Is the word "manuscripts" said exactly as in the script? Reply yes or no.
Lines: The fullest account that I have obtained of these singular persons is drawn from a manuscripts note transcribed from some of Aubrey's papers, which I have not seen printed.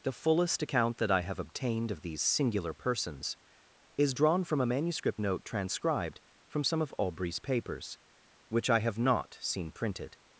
no